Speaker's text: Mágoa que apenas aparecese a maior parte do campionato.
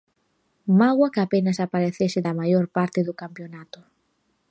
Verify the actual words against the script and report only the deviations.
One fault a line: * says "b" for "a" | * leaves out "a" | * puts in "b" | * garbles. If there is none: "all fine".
all fine